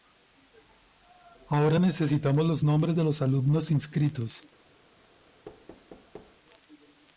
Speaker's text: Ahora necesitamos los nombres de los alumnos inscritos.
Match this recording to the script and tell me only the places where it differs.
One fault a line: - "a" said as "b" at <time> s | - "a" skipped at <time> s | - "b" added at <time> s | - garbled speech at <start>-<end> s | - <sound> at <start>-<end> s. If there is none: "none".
- thud at 5.4-6.4 s